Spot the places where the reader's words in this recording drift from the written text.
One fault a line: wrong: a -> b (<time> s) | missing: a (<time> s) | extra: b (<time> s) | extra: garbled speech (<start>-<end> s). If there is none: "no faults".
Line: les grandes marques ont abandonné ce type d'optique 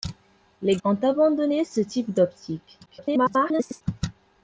missing: grandes marques (0.8 s)
extra: garbled speech (2.9-3.8 s)